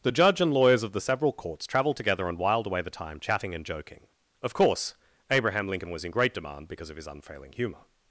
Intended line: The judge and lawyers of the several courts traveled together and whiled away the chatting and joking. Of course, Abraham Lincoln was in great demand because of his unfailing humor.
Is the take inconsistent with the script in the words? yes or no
yes